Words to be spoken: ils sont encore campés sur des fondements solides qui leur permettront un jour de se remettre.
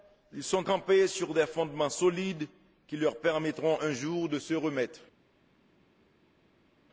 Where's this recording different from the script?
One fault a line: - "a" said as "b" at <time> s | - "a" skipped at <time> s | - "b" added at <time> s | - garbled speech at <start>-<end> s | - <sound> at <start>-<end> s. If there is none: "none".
- "encore" skipped at 0.7 s